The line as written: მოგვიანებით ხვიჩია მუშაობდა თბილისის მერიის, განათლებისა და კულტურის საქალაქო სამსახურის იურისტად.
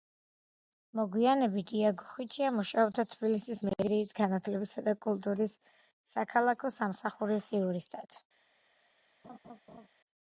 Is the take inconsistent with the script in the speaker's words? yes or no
yes